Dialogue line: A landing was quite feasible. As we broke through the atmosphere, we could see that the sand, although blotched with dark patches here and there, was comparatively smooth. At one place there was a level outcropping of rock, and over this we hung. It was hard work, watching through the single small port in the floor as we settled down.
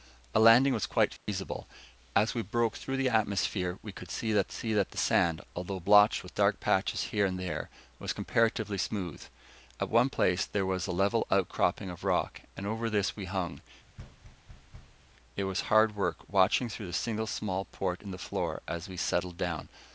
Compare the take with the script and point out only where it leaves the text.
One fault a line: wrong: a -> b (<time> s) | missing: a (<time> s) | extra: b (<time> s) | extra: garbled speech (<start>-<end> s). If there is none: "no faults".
extra: see that (4.5 s)